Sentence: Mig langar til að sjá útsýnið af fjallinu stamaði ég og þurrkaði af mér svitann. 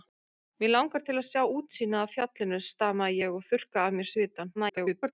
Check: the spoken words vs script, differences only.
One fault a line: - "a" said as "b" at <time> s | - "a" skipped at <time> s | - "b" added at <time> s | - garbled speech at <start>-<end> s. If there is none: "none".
- garbled speech at 4.5-5.1 s